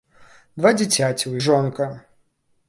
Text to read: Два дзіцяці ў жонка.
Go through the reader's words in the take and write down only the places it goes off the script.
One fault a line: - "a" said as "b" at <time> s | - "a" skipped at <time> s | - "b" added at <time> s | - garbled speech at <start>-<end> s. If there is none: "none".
none